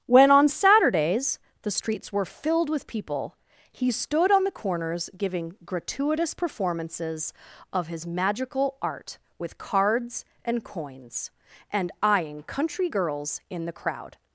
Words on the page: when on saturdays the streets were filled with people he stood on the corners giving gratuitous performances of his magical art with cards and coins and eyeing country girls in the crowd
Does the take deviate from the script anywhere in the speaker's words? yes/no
no